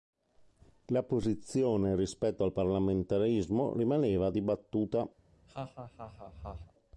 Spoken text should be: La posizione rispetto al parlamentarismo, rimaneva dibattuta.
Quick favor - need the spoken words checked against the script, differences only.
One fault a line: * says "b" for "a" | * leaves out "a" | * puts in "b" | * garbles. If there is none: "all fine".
all fine